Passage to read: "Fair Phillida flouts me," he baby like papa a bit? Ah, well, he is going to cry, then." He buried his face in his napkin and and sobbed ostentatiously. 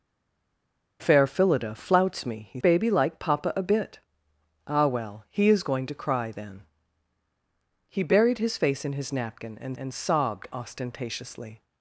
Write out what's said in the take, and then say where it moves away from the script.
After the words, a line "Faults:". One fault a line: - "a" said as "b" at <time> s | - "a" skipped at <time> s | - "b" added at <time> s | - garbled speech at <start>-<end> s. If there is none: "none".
"Fair Phillida flouts me," he baby like papa a bit? Ah, well, he is going to cry, then." He buried his face in his napkin and and sobbed ostentatiously.
Faults:
none